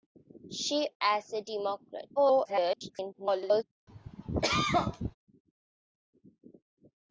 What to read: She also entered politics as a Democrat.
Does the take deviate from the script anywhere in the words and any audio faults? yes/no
yes